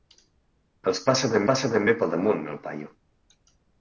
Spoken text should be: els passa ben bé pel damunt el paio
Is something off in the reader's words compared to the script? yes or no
yes